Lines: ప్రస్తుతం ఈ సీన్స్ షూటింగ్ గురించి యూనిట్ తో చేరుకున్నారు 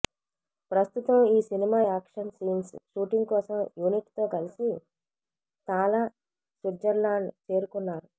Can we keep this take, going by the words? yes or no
no